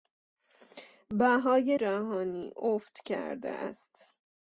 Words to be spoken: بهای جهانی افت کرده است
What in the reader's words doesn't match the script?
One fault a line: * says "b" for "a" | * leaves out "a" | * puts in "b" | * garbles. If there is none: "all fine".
all fine